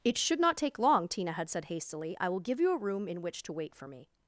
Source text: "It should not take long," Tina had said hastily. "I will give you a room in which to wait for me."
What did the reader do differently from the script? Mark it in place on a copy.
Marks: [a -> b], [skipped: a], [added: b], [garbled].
"It should not take long," Tina had said hastily. "I will give you a room in which to wait for me."